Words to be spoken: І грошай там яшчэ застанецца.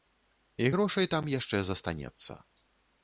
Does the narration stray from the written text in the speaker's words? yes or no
no